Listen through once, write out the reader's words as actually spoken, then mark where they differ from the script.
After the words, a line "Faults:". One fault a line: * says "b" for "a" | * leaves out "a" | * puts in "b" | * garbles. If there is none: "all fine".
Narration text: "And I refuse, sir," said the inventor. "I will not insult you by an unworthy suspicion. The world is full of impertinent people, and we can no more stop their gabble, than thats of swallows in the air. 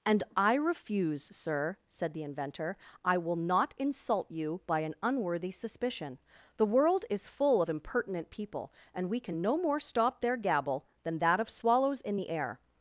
"And I refuse, sir," said the inventor. "I will not insult you by an unworthy suspicion. The world is full of impertinent people, and we can no more stop their gabble, than that of swallows in the air.
Faults:
* says "that" for "thats"